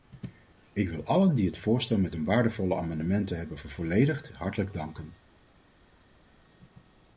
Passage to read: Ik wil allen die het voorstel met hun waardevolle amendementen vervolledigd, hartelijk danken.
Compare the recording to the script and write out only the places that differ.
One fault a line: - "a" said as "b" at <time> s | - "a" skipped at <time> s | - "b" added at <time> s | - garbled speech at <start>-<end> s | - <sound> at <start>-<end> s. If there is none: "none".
- "hebben" added at 3.4 s